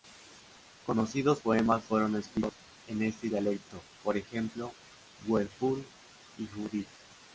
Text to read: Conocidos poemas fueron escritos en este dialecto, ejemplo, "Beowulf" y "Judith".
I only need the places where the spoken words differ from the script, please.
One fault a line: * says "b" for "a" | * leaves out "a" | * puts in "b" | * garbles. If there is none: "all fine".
* puts in "por"